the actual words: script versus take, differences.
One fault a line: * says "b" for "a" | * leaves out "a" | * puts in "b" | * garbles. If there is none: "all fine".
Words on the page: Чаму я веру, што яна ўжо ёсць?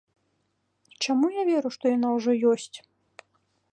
all fine